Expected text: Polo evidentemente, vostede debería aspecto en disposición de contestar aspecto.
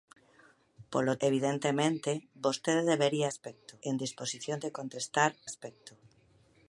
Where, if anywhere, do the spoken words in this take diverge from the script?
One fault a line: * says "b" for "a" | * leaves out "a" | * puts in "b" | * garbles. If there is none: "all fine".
all fine